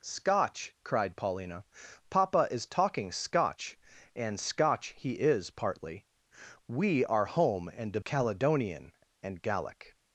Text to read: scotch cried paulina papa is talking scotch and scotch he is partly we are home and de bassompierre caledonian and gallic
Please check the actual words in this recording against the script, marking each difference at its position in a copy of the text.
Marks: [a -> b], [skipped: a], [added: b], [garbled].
scotch cried paulina papa is talking scotch and scotch he is partly we are home and de [skipped: bassompierre] caledonian and gallic